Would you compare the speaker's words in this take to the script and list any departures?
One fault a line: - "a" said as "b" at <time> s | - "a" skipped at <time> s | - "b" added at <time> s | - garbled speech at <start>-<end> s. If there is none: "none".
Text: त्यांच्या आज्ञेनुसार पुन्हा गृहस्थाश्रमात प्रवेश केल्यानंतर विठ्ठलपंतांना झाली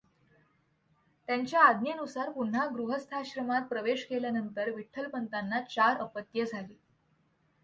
- "चार अपत्ये" added at 5.6 s